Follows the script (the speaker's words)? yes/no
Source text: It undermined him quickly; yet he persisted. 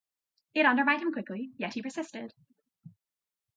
yes